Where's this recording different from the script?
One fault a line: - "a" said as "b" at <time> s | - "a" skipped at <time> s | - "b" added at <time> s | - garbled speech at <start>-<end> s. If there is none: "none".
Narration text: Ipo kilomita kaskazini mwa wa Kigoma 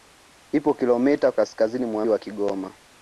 none